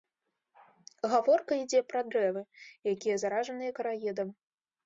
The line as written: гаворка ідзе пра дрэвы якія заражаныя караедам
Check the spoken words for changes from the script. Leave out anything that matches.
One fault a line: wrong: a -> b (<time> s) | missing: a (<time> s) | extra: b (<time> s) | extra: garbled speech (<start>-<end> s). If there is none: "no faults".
no faults